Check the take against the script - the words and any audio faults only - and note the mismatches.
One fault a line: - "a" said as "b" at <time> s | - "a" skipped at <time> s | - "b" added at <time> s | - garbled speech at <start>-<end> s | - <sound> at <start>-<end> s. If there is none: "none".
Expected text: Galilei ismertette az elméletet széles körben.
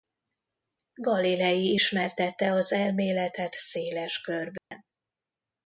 - dropout at 4.6-4.7 s